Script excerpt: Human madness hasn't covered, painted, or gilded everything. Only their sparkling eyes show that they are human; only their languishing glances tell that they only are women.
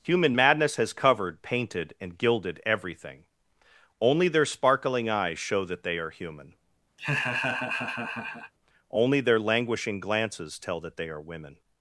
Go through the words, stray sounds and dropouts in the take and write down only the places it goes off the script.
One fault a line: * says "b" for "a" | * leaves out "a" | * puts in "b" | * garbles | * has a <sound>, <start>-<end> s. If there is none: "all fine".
* says "has" for "hasn't"
* says "and" for "or"
* has a laugh, 7.0-8.5 s
* leaves out "only"